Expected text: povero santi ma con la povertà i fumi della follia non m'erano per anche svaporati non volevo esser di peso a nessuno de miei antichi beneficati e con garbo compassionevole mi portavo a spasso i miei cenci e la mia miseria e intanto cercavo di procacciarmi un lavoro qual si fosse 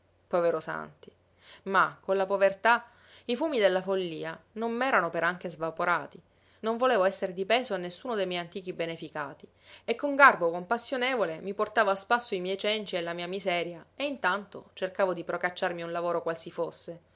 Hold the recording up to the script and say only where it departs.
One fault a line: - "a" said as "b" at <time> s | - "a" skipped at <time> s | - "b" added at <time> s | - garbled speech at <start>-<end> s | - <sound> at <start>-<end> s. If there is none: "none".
none